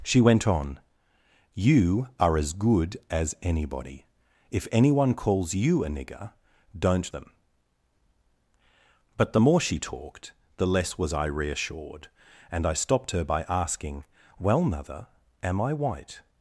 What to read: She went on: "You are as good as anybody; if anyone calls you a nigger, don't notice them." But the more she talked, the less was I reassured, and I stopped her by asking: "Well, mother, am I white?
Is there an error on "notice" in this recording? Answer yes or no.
yes